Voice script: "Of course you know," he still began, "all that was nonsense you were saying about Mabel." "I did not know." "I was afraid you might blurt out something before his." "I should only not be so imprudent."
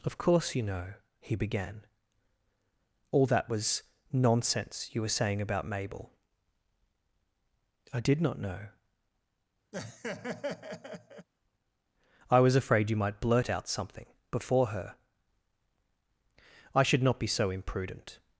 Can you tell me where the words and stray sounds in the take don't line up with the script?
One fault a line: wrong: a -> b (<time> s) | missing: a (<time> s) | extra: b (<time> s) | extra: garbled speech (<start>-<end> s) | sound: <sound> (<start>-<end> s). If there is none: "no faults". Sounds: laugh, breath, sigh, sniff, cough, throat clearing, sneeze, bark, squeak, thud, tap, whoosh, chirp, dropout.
missing: still (1.4 s)
sound: laugh (9.7-11.3 s)
wrong: his -> her (14.7 s)
missing: only (17.0 s)